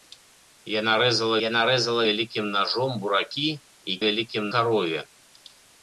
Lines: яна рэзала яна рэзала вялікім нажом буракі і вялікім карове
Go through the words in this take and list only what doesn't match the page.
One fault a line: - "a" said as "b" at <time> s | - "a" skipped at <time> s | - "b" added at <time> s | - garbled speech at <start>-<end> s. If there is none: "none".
none